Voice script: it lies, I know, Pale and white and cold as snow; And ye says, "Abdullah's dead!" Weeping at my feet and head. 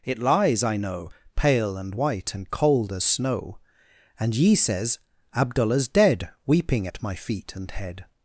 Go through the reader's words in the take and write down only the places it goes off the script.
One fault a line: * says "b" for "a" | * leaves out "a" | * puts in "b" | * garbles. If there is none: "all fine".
all fine